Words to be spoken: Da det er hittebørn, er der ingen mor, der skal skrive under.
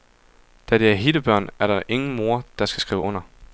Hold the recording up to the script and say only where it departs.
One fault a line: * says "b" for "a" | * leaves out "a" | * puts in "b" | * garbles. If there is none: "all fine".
all fine